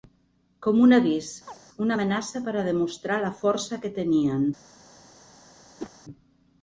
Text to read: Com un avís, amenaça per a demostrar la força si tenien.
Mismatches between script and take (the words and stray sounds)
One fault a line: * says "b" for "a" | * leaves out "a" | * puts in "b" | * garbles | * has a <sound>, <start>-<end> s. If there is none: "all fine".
* has a chirp, 1.5-1.6 s
* puts in "una"
* says "que" for "si"
* has a whoosh, 5.8-5.9 s